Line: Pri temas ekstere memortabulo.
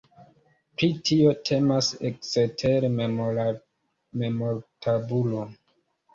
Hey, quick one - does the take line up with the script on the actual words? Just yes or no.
no